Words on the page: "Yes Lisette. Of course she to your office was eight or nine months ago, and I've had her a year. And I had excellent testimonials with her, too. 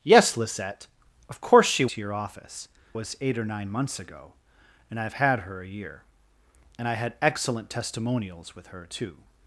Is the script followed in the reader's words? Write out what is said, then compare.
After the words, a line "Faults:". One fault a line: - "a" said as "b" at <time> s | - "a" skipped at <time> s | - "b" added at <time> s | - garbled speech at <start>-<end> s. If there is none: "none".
"Yes Lisette. Of course she to your office was eight or nine months ago, and I've had her a year. And I had excellent testimonials with her, too.
Faults:
none